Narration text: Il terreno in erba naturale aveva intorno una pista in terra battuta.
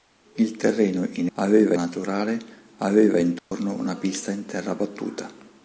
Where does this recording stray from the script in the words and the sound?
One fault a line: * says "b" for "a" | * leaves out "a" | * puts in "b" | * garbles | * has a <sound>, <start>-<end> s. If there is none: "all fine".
* says "aveva" for "erba"
* has a dropout, 3.4-3.5 s